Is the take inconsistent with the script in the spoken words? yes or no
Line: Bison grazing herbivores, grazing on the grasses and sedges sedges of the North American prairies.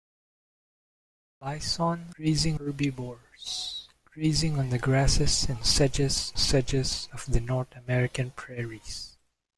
no